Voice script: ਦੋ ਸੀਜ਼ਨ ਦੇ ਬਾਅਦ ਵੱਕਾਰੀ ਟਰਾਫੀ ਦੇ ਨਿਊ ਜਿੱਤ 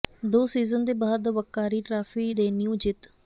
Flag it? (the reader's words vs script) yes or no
no